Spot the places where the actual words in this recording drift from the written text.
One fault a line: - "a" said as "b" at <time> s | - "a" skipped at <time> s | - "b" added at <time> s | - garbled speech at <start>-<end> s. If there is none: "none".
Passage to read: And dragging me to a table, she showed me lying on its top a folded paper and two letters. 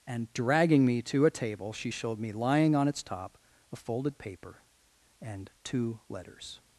none